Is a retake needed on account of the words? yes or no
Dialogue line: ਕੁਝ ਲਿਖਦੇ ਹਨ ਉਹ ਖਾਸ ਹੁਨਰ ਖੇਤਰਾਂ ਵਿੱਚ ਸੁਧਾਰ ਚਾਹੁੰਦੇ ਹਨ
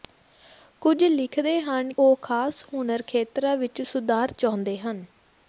no